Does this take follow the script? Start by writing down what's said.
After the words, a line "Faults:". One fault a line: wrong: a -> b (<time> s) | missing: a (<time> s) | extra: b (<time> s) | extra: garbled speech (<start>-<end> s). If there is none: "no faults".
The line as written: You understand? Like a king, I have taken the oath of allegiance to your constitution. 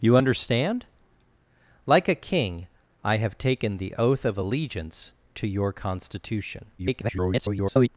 You understand? Like a king, I have taken the oath of allegiance to your constitution. [garbled]
Faults:
extra: garbled speech (6.8-7.9 s)